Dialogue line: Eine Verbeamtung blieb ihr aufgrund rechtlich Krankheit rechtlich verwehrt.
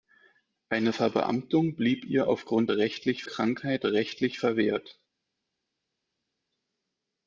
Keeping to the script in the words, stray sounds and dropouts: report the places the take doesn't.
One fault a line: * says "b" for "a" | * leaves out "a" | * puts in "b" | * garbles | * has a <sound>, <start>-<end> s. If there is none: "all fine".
all fine